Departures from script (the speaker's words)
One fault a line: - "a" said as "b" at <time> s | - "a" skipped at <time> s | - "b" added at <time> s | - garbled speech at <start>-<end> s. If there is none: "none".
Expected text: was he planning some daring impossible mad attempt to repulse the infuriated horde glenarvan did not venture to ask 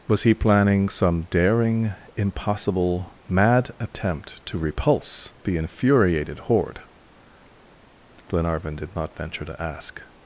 none